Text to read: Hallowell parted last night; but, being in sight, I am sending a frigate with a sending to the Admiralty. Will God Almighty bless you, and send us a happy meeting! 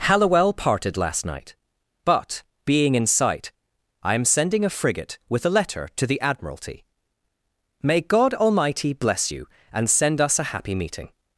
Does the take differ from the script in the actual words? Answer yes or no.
yes